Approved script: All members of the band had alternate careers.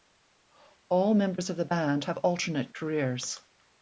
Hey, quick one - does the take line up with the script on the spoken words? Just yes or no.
no